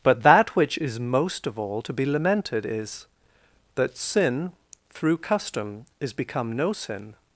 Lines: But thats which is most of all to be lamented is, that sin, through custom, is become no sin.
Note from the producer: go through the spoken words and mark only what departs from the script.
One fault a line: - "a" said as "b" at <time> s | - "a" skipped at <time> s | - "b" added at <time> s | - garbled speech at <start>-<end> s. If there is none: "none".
- "thats" said as "that" at 0.2 s